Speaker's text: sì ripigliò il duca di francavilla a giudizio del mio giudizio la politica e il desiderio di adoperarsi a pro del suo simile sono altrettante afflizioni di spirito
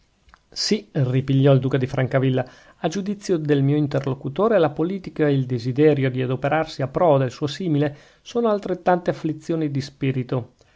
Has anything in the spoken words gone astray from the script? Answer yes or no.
yes